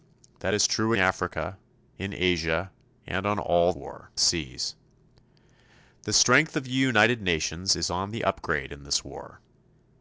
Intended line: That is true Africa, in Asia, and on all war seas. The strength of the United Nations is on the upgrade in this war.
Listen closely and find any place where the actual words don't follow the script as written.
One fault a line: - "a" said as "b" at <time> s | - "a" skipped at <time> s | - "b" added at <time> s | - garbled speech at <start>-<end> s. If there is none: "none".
none